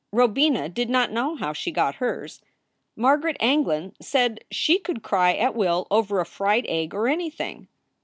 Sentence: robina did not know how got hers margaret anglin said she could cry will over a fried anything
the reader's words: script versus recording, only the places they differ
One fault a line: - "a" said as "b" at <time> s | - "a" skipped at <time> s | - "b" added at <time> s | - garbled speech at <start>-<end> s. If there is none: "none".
- "she" added at 1.5 s
- "at" added at 5.3 s
- "egg or" added at 6.7 s